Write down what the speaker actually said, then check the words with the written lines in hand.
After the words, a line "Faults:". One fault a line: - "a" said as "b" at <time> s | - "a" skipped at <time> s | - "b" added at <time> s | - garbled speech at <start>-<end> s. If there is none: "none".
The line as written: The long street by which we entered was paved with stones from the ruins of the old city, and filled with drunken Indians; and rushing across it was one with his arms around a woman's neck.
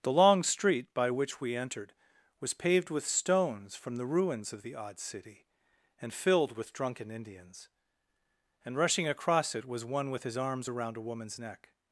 The long street by which we entered was paved with stones from the ruins of the odd city, and filled with drunken Indians; and rushing across it was one with his arms around a woman's neck.
Faults:
- "old" said as "odd" at 4.7 s